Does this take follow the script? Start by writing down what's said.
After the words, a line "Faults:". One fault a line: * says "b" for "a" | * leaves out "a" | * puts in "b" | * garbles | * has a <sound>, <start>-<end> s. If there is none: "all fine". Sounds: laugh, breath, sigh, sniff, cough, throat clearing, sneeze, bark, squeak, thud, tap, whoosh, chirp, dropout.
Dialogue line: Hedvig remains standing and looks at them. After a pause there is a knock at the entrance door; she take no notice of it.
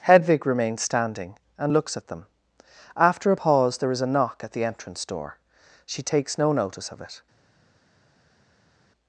Hedvig remains standing and looks at them. After a pause there is a knock at the entrance door; she takes no notice of it.
Faults:
* says "takes" for "take"